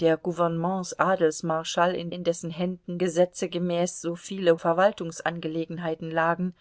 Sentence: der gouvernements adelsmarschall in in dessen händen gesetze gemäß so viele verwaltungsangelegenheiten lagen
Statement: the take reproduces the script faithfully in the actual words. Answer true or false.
true